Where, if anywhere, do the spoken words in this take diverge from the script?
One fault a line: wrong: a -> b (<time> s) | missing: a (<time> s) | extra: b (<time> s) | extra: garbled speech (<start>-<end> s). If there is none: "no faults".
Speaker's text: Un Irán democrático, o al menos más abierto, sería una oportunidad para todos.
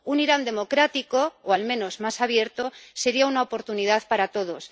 no faults